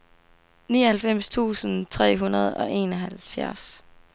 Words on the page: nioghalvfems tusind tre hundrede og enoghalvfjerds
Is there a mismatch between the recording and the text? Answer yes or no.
no